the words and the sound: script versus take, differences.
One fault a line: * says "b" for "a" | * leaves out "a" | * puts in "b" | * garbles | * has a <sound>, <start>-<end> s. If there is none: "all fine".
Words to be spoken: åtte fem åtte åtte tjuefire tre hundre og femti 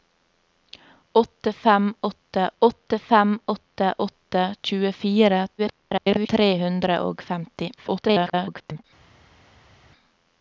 * puts in "fem åtte åtte"
* garbles
* garbles